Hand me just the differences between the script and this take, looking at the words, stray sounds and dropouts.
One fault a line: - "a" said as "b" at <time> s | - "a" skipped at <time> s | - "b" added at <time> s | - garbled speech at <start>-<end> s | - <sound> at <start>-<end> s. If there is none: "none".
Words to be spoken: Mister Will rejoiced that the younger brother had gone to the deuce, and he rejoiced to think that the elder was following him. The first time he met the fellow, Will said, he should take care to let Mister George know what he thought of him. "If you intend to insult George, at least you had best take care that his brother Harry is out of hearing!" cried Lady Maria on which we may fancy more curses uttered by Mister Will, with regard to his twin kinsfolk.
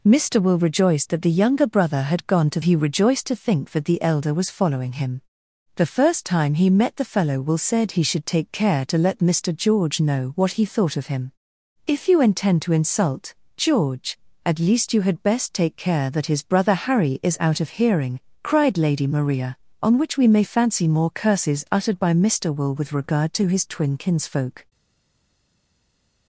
- "the deuce and" skipped at 2.6 s